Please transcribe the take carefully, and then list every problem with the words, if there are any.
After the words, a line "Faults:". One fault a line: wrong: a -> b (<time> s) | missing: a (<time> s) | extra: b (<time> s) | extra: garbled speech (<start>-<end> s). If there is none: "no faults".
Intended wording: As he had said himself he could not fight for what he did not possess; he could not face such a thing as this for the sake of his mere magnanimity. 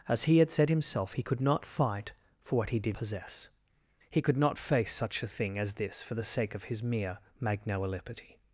As he had said himself he could not fight for what he did possess; he could not face such a thing as this for the sake of his mere magnanimity.
Faults:
missing: not (3.0 s)